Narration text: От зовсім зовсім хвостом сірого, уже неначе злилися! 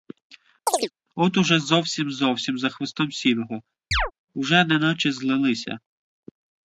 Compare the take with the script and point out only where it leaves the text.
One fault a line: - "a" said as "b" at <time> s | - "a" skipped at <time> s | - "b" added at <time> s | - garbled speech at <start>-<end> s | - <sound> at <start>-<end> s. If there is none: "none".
- chirp at 0.7-0.9 s
- "уже" added at 1.4 s
- "за" added at 2.6 s
- chirp at 3.9-4.1 s